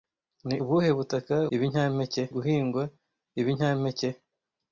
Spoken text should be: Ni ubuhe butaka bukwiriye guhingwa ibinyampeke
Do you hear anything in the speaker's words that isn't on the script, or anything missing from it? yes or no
yes